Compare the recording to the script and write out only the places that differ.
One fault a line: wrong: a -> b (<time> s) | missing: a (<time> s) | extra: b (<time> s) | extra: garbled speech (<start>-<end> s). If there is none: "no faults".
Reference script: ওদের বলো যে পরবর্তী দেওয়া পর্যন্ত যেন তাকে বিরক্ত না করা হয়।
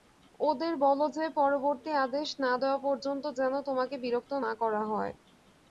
extra: আদেশ না (2.1 s)
wrong: তাকে -> তোমাকে (3.7 s)